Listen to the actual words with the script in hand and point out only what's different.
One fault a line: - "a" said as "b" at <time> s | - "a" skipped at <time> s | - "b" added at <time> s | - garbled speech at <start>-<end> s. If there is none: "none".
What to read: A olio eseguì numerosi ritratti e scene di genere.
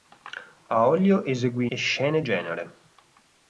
- "numerosi ritratti" skipped at 1.7 s
- "di" skipped at 2.2 s